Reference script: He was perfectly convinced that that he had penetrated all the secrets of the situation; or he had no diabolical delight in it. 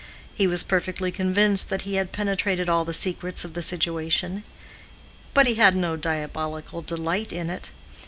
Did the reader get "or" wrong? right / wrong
wrong